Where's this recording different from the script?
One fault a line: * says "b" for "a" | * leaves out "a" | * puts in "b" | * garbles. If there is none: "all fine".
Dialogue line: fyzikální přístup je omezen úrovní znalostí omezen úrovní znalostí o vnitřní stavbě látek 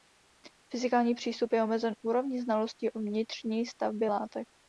* leaves out "omezen úrovní znalostí"